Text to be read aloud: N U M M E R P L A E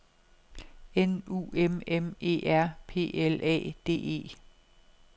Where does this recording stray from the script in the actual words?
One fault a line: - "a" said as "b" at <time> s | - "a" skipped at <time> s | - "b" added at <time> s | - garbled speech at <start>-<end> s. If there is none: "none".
- "D" added at 3.8 s